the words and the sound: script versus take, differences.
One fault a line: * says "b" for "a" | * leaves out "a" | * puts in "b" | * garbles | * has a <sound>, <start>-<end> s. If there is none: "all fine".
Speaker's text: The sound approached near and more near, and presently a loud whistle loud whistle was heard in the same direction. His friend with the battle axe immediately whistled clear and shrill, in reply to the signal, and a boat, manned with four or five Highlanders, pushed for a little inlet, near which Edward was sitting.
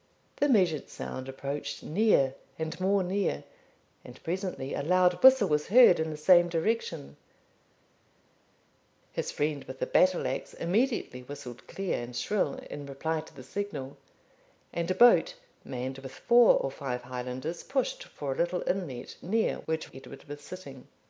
* puts in "measured"
* leaves out "loud whistle"